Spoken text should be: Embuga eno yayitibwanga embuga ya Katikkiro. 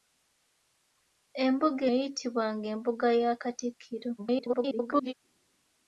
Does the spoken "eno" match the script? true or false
false